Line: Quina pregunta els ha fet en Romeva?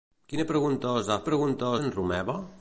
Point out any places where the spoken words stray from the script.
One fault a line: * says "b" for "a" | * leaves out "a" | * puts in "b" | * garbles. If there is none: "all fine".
* says "pregunta" for "fet"